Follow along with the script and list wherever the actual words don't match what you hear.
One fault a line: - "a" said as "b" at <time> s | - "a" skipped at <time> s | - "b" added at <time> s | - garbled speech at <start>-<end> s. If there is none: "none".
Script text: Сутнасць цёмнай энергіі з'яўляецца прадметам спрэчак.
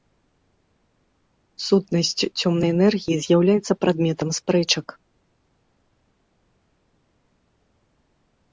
none